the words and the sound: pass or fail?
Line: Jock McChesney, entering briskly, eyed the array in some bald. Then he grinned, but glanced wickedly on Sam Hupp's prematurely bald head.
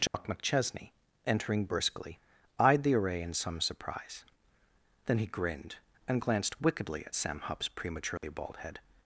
fail